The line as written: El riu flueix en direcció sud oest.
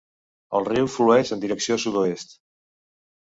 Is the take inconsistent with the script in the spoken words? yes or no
no